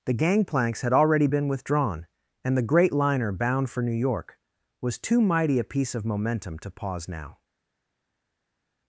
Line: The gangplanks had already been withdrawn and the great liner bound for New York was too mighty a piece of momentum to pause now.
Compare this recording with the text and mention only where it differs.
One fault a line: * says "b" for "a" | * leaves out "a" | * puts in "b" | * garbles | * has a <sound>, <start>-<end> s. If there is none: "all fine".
all fine